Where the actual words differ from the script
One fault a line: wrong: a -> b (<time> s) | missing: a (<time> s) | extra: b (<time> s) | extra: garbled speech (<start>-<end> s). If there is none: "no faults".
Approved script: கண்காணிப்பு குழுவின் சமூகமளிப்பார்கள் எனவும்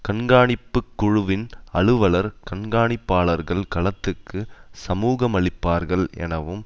extra: அலுவலர் கண்காணிப்பாளர்கள் களத்துக்கு (1.7 s)